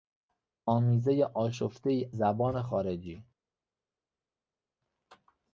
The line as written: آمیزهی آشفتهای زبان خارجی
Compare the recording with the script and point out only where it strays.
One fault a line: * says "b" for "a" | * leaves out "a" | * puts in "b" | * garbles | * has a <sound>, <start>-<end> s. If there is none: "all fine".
all fine